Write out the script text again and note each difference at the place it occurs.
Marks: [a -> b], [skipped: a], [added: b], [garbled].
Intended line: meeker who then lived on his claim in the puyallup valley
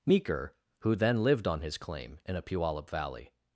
meeker who then lived on his claim in [the -> a] puyallup valley